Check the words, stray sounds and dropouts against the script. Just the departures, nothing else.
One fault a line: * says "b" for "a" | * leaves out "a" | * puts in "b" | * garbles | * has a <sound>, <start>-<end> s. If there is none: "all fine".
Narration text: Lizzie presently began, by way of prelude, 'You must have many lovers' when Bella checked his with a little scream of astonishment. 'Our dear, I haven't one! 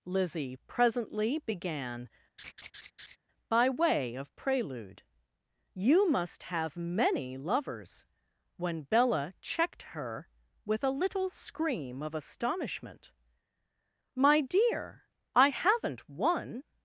* has a laugh, 2.4-3.2 s
* says "her" for "his"
* says "My" for "Our"